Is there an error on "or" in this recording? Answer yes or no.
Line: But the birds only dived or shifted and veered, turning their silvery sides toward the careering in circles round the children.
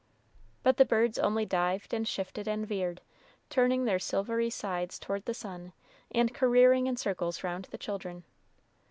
yes